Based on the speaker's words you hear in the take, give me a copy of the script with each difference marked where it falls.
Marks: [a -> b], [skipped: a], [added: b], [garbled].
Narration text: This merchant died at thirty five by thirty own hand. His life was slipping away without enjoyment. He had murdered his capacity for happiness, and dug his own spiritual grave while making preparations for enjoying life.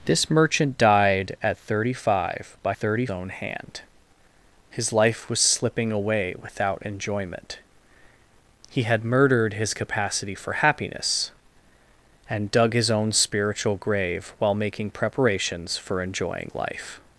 This merchant died at thirty five by thirty own hand. His life was slipping away without enjoyment. He had murdered his capacity for happiness, and dug his own spiritual grave while making preparations for enjoying life.